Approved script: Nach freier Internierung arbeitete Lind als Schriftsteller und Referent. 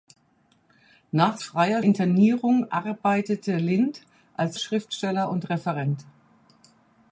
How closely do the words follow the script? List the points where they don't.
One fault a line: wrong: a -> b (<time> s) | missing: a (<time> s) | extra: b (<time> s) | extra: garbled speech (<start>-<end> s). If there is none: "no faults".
no faults